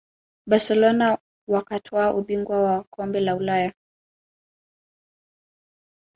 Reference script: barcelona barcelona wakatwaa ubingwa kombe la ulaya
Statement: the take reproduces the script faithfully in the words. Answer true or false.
false